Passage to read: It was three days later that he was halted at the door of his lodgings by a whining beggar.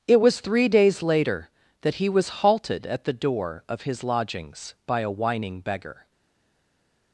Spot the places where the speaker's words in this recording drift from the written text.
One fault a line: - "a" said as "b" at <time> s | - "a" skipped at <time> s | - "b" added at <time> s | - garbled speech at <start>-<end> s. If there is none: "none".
none